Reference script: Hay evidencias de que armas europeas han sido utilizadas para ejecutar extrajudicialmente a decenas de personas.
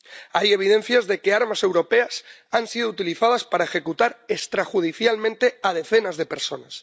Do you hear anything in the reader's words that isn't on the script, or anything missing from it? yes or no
no